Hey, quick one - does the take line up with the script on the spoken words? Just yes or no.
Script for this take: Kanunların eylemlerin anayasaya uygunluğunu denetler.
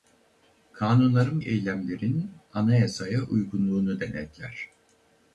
yes